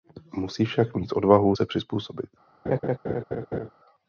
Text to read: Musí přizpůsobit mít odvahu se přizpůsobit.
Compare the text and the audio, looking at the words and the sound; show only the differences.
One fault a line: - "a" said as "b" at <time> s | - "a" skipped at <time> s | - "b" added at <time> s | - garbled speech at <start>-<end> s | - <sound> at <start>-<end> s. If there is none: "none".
- "přizpůsobit" said as "však" at 0.7 s
- laugh at 2.7-3.7 s